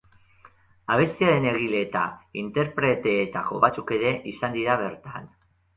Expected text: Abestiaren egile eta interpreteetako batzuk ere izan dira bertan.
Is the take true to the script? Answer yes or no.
yes